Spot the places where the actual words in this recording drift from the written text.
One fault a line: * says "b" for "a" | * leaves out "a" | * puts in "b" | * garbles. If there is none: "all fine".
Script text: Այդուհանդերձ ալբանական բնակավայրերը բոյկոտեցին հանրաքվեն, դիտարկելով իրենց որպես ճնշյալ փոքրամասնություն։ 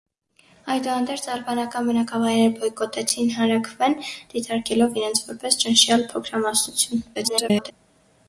* garbles